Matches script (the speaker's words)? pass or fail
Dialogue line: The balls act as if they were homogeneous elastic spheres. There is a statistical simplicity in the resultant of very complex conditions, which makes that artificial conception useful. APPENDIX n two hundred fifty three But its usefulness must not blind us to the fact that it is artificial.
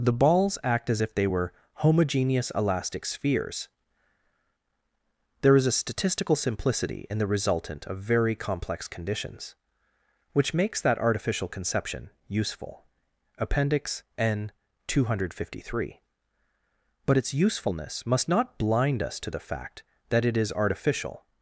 pass